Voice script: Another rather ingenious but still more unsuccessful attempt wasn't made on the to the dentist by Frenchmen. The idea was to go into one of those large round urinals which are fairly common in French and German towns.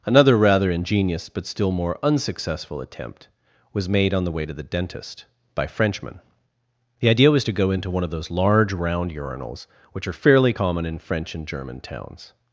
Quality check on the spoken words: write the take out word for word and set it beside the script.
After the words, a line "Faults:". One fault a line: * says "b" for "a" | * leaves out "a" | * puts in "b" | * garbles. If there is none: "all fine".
Another rather ingenious but still more unsuccessful attempt was made on the way to the dentist by Frenchmen. The idea was to go into one of those large round urinals which are fairly common in French and German towns.
Faults:
* says "was" for "wasn't"
* puts in "way"